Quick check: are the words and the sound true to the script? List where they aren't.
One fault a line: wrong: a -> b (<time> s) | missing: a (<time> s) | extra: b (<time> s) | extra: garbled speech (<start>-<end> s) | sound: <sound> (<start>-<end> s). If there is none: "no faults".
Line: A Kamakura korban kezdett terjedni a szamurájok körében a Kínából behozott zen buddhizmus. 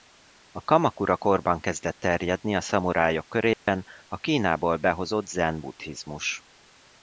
sound: dropout (3.5-3.7 s)